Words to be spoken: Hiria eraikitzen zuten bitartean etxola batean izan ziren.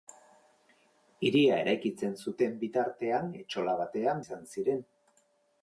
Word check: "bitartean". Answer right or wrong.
right